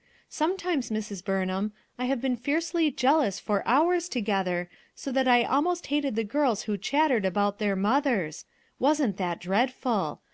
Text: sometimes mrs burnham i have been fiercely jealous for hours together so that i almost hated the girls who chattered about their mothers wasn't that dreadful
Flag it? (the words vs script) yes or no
no